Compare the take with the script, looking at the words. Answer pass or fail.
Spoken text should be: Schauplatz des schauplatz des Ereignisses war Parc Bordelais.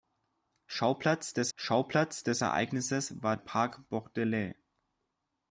pass